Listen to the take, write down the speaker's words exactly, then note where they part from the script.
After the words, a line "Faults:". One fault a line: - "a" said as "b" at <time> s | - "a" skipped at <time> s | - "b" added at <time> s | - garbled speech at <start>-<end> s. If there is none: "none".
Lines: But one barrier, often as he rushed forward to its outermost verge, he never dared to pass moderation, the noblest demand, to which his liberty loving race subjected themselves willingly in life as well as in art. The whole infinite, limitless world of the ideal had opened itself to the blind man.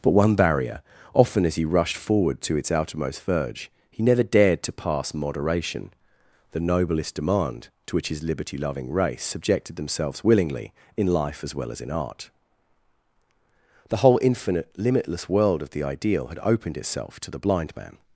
But one barrier, often as he rushed forward to its outermost verge, he never dared to pass moderation, the noblest demand, to which his liberty loving race subjected themselves willingly in life as well as in art. The whole infinite, limitless world of the ideal had opened itself to the blind man.
Faults:
none